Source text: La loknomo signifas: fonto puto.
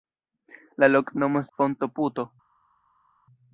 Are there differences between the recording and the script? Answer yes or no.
yes